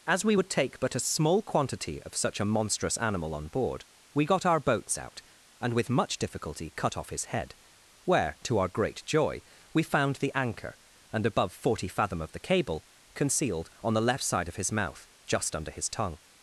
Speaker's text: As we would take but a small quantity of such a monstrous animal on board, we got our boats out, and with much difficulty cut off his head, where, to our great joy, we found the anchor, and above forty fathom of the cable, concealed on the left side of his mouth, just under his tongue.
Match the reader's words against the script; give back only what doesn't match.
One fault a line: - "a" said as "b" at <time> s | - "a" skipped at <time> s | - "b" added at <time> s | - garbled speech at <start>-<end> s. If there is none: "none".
none